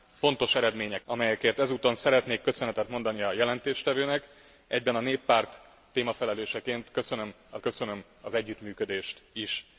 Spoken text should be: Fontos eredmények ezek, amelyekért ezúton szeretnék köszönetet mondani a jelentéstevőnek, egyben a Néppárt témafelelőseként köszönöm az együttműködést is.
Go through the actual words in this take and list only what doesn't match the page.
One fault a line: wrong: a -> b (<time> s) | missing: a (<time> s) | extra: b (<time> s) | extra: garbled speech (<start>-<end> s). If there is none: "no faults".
missing: ezek (1.1 s)
extra: köszönöm az (7.6 s)